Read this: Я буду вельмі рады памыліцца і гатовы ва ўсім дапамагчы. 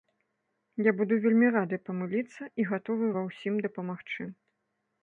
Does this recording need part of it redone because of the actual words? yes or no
no